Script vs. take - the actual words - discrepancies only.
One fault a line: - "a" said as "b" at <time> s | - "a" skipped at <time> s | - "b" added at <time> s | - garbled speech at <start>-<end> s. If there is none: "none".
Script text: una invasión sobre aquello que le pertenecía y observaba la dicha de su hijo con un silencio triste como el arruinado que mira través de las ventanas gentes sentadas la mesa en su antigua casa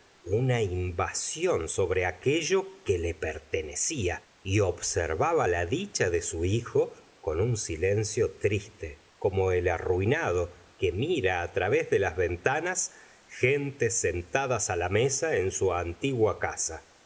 none